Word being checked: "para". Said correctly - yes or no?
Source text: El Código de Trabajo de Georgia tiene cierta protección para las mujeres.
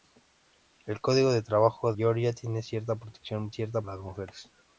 no